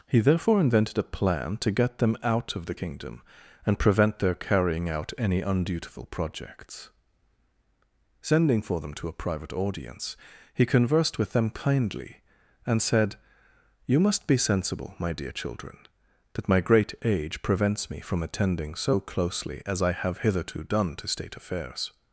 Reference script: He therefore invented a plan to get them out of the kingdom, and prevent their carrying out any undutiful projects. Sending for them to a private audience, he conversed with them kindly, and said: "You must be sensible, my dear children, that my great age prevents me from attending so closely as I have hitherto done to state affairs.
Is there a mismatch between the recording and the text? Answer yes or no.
no